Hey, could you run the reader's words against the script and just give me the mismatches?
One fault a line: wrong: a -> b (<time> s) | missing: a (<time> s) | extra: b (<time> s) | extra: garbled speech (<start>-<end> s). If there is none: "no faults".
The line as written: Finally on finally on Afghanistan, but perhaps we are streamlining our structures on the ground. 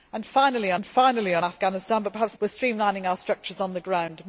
no faults